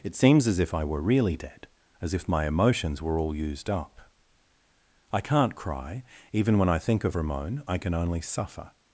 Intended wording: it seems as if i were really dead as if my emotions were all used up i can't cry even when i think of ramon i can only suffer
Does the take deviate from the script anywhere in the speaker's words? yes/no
no